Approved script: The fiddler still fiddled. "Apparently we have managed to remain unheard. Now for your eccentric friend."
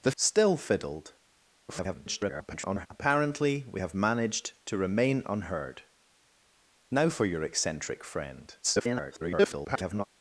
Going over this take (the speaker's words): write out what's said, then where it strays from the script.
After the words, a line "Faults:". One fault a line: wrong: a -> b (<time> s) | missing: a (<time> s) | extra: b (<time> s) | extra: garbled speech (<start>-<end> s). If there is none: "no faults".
The still fiddled. [garbled] "Apparently we have managed to remain unheard. Now for your eccentric friend." [garbled]
Faults:
missing: fiddler (0.1 s)
extra: garbled speech (1.7-2.9 s)
extra: garbled speech (8.6-10.1 s)